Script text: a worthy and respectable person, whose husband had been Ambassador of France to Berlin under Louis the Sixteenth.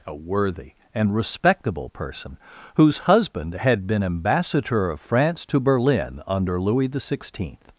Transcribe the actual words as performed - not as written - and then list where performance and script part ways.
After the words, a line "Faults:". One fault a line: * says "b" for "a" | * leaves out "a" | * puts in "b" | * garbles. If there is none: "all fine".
a worthy and respectable person, whose husband had been Ambassador of France to Berlin under Louis the Sixteenth.
Faults:
all fine